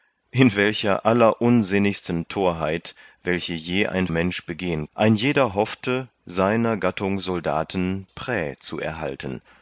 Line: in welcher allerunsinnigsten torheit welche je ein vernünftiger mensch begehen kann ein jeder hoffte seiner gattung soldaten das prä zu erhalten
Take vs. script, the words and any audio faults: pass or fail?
fail